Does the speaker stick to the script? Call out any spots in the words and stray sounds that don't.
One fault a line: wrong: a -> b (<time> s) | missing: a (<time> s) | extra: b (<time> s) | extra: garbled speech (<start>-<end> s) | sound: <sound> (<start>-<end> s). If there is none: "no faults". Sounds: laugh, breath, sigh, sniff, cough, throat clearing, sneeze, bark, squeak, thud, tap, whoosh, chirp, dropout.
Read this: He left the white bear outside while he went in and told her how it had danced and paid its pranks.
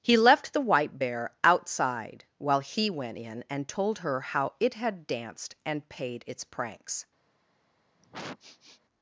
sound: sniff (8.0-8.8 s)